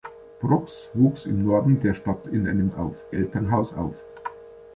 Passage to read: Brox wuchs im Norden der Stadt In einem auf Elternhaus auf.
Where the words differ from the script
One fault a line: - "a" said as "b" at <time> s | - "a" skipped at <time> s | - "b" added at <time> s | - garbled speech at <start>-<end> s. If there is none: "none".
none